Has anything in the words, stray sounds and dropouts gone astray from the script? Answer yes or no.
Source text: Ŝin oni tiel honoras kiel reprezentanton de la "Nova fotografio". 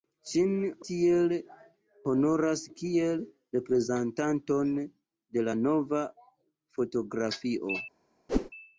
yes